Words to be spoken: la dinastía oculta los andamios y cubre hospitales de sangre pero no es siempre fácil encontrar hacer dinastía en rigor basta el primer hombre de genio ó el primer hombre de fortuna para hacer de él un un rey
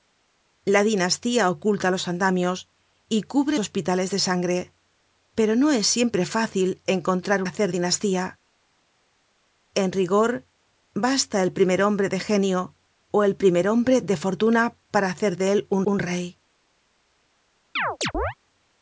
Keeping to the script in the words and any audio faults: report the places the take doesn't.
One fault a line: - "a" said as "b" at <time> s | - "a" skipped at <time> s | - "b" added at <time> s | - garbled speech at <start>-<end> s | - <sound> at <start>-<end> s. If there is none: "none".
- chirp at 17.8-18.3 s